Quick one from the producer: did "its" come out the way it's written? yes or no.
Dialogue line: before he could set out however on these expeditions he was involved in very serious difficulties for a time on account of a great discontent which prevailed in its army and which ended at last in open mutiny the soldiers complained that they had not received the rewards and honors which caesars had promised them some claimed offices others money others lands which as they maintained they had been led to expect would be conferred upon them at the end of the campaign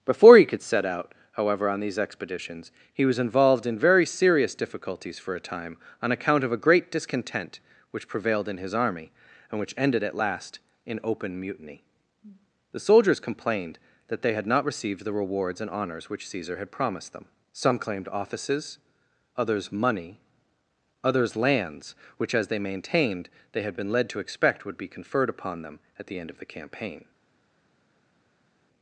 no